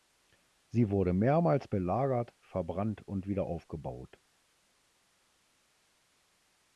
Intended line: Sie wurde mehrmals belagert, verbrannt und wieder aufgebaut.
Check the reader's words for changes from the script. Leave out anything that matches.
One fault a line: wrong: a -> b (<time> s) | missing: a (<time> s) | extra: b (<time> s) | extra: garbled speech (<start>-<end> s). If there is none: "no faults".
no faults